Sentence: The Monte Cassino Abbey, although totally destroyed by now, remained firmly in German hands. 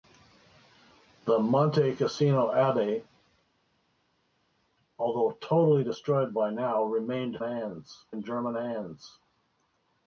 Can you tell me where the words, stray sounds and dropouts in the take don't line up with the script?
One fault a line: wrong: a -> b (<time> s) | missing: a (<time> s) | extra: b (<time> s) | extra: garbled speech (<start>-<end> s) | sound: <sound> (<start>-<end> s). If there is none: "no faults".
wrong: firmly -> hands (7.4 s)